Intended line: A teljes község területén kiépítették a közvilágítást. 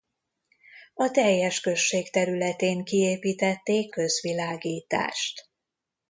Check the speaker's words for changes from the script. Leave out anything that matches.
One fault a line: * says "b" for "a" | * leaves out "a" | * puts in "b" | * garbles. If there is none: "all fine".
* leaves out "a"